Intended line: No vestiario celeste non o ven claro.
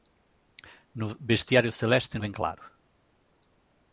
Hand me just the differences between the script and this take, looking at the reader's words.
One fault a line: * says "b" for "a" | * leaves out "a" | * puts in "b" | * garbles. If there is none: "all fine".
* leaves out "non"